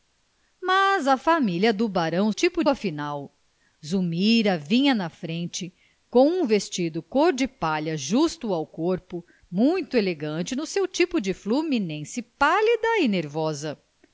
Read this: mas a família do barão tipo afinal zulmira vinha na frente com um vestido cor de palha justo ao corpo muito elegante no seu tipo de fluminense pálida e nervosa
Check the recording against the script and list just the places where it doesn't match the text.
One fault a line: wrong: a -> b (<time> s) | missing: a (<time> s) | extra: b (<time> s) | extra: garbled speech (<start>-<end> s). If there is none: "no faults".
no faults